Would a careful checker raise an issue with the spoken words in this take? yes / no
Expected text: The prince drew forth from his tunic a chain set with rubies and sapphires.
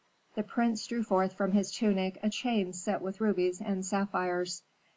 no